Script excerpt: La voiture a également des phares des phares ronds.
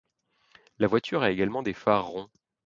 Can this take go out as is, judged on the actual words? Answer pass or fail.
fail